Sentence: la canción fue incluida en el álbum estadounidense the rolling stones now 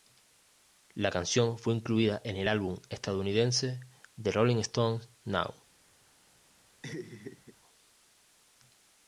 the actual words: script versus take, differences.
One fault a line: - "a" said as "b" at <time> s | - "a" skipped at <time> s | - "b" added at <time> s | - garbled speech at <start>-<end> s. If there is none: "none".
none